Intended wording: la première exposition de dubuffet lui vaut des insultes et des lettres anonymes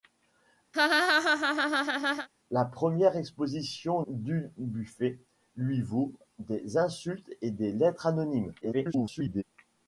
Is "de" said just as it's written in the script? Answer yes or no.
no